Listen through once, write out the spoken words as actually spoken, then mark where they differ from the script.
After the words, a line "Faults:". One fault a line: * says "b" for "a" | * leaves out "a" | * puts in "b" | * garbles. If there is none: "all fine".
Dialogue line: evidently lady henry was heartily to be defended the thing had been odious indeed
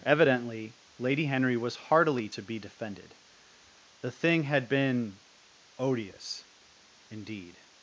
evidently lady henry was heartily to be defended the thing had been odious indeed
Faults:
all fine